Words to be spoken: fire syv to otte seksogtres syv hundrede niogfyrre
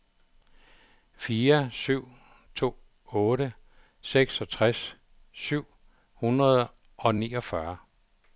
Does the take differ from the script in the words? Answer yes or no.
yes